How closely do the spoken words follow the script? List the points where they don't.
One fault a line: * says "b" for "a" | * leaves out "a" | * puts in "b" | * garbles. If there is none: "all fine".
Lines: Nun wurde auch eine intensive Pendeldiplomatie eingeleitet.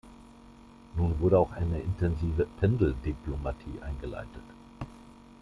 all fine